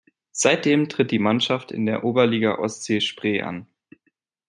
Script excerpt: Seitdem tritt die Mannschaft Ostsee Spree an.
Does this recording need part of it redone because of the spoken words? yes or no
yes